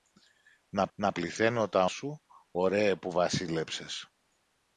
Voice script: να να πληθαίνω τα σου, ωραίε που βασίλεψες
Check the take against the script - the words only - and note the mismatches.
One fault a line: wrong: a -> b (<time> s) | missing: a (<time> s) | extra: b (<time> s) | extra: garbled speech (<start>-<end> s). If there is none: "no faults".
no faults